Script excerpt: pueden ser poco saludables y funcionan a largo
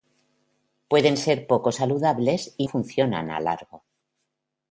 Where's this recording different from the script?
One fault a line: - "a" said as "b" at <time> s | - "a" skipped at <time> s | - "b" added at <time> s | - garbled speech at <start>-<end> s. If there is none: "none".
none